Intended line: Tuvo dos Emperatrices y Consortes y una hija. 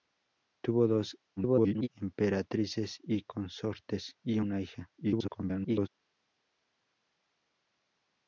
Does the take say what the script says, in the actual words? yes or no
no